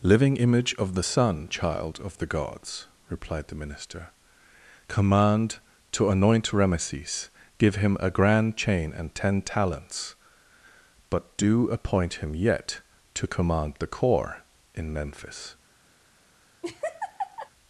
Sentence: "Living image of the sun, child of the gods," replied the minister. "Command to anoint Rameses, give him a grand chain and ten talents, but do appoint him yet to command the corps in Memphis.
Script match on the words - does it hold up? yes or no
yes